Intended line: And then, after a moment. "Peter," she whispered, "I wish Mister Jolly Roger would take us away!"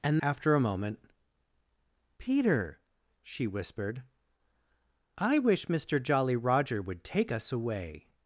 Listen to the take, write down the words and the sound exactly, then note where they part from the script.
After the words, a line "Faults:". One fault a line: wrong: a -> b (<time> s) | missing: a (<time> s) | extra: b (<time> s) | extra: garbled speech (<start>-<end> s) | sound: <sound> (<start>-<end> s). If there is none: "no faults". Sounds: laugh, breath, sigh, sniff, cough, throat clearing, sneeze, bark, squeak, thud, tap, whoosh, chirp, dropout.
And after a moment. "Peter," she whispered, "I wish Mister Jolly Roger would take us away!"
Faults:
missing: then (0.2 s)